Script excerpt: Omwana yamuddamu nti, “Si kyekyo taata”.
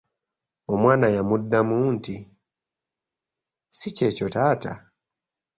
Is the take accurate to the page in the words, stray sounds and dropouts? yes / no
yes